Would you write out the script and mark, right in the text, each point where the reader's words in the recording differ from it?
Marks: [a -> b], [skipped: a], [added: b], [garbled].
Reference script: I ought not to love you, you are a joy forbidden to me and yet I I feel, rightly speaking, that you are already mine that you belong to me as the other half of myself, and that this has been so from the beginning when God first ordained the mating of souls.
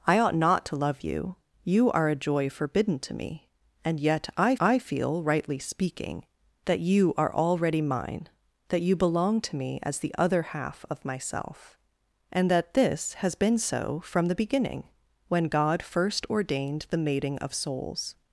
I ought not to love you, you are a joy forbidden to me and yet I I feel, rightly speaking, that you are already mine that you belong to me as the other half of myself, and that this has been so from the beginning when God first ordained the mating of souls.